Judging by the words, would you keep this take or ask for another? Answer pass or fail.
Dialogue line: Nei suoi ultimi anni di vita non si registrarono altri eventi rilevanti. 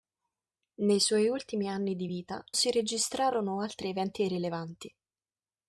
fail